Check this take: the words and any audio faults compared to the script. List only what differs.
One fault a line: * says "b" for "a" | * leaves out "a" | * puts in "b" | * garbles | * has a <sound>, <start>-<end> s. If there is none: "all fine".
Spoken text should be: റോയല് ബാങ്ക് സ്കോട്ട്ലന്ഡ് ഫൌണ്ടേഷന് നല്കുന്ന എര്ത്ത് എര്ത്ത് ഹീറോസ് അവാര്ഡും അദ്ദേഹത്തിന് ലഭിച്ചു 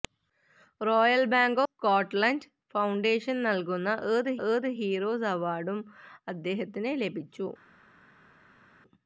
all fine